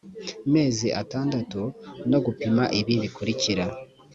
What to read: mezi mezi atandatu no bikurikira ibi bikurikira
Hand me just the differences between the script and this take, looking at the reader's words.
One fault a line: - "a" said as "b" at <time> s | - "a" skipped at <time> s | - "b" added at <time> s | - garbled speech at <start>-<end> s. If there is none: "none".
- "mezi" skipped at 0.9 s
- "bikurikira" said as "gupima" at 2.2 s